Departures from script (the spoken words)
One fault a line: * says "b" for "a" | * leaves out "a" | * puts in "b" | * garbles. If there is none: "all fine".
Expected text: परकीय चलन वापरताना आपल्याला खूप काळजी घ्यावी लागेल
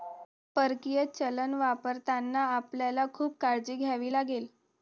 all fine